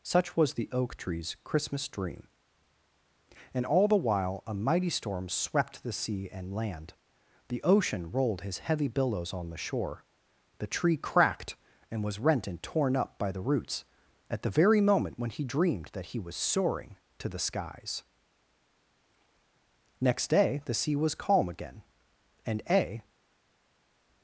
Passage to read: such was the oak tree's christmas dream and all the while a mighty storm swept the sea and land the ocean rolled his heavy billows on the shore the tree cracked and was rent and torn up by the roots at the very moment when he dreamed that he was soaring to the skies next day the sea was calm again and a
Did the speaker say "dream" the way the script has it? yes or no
yes